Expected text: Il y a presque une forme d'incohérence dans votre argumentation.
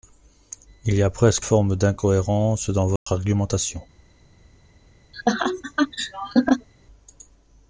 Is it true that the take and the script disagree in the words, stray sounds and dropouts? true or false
true